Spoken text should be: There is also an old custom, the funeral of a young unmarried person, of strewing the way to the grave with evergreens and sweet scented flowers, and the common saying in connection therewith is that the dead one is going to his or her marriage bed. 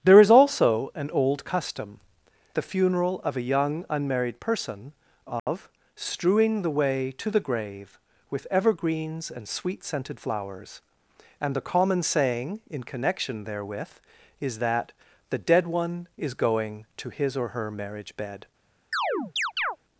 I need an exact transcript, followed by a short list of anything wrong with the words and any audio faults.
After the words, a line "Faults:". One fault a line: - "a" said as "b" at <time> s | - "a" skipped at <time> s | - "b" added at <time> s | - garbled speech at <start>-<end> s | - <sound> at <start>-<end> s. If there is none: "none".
There is also an old custom, the funeral of a young unmarried person, of strewing the way to the grave with evergreens and sweet scented flowers, and the common saying in connection therewith is that the dead one is going to his or her marriage bed.
Faults:
- dropout at 5.4-5.5 s
- chirp at 18.9-19.8 s